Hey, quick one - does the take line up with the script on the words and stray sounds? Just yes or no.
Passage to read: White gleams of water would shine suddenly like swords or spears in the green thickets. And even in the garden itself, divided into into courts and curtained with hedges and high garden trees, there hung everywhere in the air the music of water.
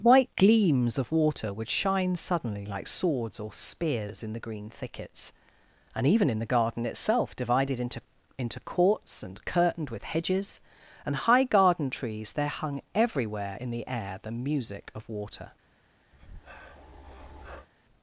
no